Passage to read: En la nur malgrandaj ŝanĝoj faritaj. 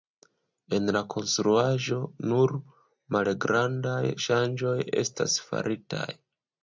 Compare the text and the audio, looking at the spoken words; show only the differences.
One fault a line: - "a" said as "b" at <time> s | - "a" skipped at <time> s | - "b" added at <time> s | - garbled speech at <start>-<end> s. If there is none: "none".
- "konstruaĵo" added at 1.1 s
- "estas" added at 5.0 s